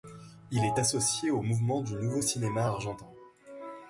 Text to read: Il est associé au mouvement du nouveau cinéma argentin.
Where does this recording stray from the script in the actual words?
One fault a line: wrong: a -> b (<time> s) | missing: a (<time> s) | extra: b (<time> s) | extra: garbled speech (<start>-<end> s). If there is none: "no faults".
no faults